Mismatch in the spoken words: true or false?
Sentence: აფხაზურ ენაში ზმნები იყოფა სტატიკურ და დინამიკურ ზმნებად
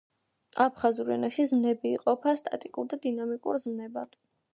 false